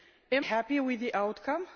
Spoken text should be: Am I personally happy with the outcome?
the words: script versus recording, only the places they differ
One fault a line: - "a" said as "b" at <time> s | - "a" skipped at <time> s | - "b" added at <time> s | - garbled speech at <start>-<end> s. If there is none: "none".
- "I personally" skipped at 0.5 s